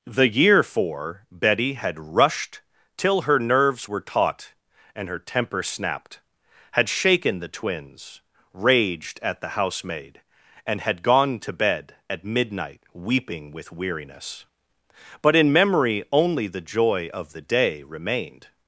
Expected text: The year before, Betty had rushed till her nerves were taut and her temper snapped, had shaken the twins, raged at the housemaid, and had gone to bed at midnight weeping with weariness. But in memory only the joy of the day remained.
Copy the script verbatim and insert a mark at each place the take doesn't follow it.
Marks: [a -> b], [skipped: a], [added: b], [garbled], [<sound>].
The year [before, -> for] Betty had rushed till her nerves were taut and her temper snapped, had shaken the twins, raged at the housemaid, and had gone to bed at midnight weeping with weariness. But in memory only the joy of the day remained.